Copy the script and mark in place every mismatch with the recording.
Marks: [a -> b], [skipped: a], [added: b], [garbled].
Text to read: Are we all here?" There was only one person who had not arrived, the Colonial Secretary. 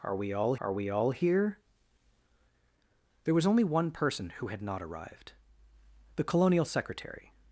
Are we all [added: are we all] here?" There was only one person who had not arrived, the Colonial Secretary.